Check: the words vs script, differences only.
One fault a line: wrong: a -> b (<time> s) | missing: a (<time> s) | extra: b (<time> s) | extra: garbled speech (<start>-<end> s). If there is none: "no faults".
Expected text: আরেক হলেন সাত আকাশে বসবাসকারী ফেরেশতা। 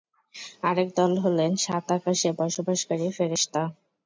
extra: দল (1.0 s)